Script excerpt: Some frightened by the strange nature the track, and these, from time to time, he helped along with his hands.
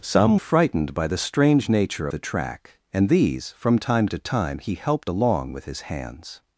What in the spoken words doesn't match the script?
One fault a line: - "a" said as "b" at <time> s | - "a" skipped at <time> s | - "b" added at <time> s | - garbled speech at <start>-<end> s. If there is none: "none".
none